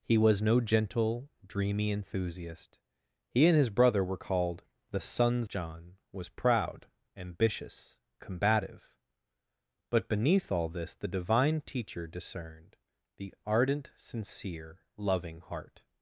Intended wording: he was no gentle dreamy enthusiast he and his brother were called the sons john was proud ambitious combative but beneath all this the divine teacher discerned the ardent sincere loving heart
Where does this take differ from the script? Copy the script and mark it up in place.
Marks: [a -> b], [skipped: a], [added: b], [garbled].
he was no gentle dreamy enthusiast he and his brother were called the sons john was proud ambitious combative but beneath all this the divine teacher discerned the ardent sincere loving heart